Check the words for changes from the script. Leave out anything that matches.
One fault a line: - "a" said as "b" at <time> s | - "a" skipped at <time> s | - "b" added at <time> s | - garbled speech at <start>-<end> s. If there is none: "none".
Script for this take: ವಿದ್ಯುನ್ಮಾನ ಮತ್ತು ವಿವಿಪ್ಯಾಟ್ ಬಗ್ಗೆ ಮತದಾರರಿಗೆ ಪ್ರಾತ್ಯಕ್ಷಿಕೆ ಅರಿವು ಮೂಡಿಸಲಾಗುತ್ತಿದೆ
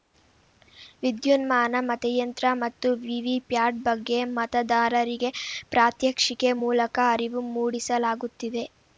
- "ಮತಯಂತ್ರ" added at 1.9 s
- "ಮೂಲಕ" added at 6.6 s